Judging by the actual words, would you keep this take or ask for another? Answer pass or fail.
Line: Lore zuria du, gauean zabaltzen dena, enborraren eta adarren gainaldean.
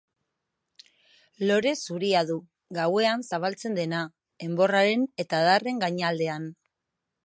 pass